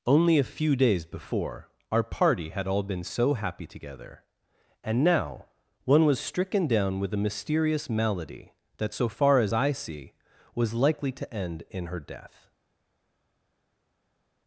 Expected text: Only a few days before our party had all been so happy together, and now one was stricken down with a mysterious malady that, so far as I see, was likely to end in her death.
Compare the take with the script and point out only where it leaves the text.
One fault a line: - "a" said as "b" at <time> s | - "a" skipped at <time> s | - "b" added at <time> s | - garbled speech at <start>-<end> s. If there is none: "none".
none